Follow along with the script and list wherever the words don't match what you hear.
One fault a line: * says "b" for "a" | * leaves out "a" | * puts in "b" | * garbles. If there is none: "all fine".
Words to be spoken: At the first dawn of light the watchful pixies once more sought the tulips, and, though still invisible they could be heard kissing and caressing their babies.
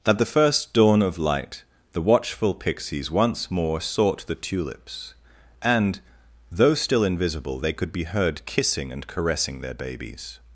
all fine